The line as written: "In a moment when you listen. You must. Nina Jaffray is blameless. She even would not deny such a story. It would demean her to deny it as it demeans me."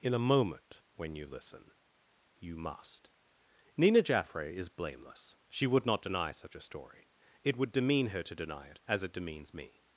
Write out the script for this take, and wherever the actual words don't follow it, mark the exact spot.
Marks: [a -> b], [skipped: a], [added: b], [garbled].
"In a moment when you listen. You must. Nina Jaffray is blameless. She [skipped: even] would not deny such a story. It would demean her to deny it as it demeans me."